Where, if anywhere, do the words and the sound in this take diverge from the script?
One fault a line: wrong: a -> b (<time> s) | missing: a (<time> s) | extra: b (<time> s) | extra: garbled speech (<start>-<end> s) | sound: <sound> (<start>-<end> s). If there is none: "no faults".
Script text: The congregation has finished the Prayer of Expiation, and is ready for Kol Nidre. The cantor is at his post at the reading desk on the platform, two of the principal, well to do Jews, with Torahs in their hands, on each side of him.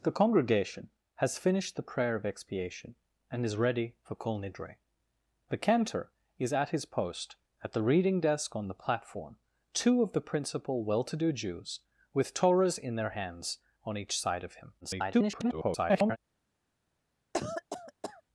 extra: garbled speech (14.8-16.2 s)
sound: cough (17.3-18.2 s)